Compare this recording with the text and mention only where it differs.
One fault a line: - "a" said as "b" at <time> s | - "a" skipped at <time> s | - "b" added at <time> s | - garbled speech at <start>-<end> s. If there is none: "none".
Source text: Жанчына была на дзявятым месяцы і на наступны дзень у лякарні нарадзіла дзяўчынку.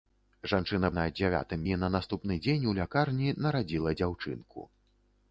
- "была" skipped at 0.9 s
- "месяцы" skipped at 1.6 s